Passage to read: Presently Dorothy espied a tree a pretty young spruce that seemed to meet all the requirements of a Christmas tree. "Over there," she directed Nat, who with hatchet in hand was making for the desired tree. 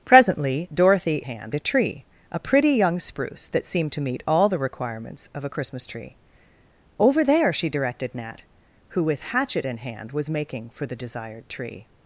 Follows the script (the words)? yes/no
no